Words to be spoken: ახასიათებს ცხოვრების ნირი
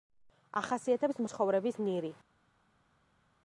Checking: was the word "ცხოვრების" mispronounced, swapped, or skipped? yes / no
no